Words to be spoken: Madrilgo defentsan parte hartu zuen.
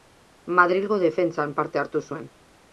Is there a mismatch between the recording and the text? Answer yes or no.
no